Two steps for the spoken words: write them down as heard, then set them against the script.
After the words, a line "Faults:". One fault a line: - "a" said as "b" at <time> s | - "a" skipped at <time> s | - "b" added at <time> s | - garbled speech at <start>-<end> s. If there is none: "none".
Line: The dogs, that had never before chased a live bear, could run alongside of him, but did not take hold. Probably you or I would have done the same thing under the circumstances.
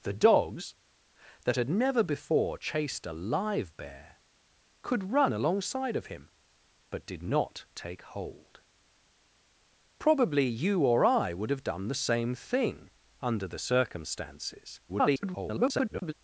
The dogs, that had never before chased a live bear, could run alongside of him, but did not take hold. Probably you or I would have done the same thing under the circumstances. [garbled]
Faults:
- garbled speech at 14.9-16.1 s